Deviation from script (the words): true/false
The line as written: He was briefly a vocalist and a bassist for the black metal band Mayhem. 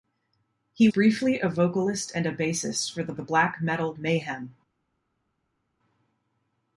true